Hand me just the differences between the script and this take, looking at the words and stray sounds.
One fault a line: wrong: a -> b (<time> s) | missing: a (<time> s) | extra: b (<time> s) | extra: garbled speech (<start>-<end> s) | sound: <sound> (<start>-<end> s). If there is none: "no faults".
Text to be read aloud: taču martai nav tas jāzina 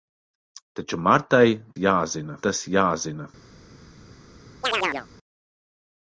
wrong: nav -> jāzina (1.8 s)
sound: chirp (4.6-5.1 s)